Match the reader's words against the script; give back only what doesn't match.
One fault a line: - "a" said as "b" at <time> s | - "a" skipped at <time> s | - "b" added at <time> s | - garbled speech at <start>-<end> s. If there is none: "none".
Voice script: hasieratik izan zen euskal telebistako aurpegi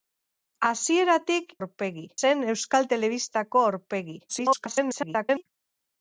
- "izan" said as "aurpegi" at 1.6 s
- garbled speech at 4.3-5.4 s